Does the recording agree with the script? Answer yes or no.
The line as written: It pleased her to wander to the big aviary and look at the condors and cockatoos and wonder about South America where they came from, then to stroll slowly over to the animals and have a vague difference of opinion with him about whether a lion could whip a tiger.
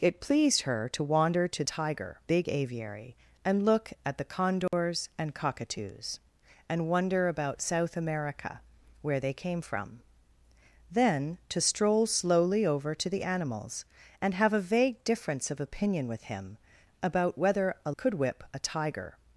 no